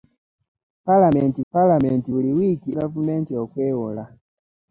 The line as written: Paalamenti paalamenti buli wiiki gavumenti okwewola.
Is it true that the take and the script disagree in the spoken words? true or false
false